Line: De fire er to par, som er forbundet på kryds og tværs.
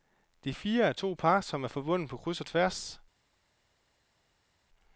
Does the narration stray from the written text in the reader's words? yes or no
no